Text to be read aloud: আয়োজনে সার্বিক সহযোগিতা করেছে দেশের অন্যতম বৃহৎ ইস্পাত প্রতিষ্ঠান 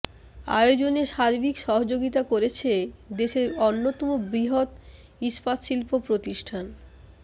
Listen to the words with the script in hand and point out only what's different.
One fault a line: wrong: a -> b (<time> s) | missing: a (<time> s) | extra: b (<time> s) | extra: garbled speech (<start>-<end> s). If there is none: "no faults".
extra: শিল্প (5.6 s)